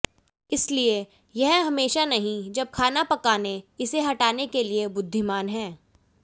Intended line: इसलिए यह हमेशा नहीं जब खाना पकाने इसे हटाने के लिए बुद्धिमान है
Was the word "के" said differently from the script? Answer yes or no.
no